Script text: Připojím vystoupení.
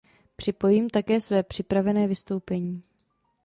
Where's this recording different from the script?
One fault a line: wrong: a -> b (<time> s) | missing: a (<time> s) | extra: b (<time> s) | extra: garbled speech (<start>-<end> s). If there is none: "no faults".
extra: také své připravené (0.9 s)